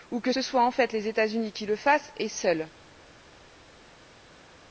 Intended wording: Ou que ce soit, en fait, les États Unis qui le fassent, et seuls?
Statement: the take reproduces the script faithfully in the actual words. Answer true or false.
true